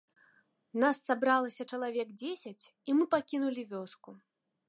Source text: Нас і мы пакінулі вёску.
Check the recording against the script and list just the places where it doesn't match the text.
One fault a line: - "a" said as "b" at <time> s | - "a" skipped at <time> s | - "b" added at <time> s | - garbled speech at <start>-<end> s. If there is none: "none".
- "сабралася чалавек дзесяць" added at 1.1 s